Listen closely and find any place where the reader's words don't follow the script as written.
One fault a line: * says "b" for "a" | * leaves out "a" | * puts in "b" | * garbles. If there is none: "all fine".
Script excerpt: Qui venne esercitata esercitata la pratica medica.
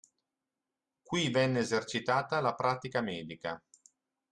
* leaves out "esercitata"